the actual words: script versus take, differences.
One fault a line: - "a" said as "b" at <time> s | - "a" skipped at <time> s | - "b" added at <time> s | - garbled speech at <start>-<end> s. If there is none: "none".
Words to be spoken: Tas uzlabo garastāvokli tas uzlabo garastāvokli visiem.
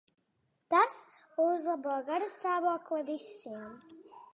- "tas uzlabo garastāvokli" skipped at 3.1 s